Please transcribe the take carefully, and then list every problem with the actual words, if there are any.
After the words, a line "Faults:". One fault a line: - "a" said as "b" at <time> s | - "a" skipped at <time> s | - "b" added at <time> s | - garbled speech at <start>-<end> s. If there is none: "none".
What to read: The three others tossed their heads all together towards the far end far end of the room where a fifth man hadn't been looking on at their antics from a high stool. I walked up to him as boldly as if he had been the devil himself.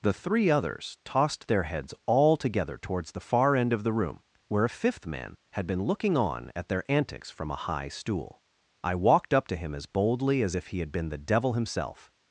The three others tossed their heads all together towards the far end of the room where a fifth man had been looking on at their antics from a high stool. I walked up to him as boldly as if he had been the devil himself.
Faults:
- "far end" skipped at 3.7 s
- "hadn't" said as "had" at 5.5 s